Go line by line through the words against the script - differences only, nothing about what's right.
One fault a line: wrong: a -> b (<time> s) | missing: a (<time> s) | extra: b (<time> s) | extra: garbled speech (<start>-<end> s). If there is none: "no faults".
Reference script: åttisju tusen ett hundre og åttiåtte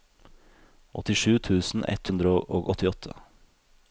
no faults